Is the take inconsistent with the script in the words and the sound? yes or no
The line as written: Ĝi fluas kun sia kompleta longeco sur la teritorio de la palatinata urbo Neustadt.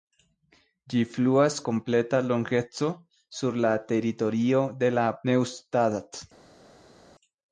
yes